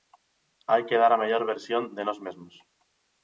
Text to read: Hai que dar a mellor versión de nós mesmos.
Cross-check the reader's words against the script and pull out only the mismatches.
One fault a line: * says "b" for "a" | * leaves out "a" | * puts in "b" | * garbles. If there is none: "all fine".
all fine